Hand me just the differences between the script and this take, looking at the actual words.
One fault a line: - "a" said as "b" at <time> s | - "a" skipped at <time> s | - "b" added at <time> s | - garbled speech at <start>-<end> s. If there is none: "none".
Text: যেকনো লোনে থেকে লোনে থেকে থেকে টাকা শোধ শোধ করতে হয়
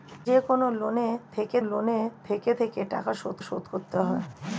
none